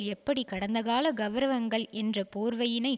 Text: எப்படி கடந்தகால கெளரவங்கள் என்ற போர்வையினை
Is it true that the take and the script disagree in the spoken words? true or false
false